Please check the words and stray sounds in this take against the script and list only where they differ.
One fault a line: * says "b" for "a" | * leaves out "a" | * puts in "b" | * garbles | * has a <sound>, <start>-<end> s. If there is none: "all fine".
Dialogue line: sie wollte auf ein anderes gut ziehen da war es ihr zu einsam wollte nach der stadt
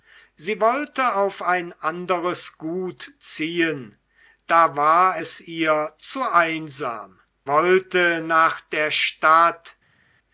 all fine